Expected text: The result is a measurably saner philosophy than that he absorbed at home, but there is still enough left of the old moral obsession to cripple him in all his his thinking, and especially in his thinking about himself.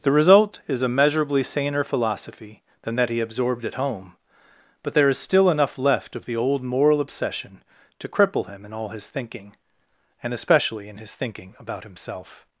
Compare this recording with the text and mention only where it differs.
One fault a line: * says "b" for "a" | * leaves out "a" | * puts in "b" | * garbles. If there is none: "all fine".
* leaves out "his"